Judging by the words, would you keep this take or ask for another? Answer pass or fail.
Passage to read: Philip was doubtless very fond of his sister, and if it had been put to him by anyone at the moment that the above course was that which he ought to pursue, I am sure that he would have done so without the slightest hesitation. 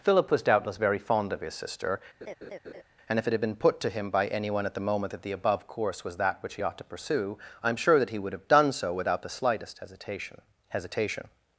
fail